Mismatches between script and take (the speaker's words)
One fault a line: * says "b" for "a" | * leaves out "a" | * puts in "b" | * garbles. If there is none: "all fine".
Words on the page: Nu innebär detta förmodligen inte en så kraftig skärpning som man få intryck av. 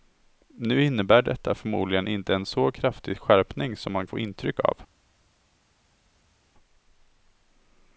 all fine